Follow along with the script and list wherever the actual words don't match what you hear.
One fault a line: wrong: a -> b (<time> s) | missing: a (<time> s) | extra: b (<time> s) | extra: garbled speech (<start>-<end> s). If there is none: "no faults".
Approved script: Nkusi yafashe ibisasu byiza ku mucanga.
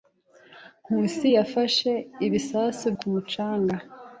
missing: byiza (2.9 s)